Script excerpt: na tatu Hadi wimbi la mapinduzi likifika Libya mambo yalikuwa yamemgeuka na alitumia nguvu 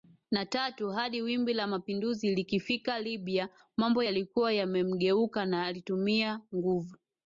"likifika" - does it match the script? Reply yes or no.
yes